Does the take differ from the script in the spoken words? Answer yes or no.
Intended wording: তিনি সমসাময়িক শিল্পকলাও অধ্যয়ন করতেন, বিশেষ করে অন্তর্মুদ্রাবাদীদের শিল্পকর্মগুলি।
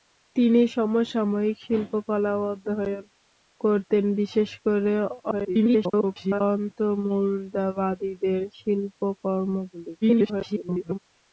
yes